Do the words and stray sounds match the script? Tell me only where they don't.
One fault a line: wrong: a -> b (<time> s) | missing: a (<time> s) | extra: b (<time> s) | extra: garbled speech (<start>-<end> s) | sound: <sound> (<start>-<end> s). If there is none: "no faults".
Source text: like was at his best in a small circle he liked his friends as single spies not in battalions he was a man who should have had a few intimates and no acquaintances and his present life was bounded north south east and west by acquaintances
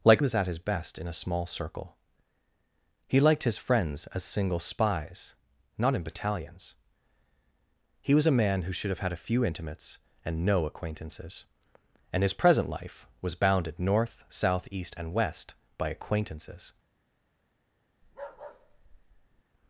sound: bark (18.0-19.4 s)